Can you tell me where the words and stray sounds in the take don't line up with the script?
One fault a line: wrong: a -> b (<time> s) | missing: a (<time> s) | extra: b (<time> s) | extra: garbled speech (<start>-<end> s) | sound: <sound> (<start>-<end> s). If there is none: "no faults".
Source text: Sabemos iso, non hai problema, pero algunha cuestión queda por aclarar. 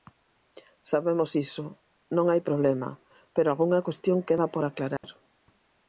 sound: dropout (5.0-5.0 s)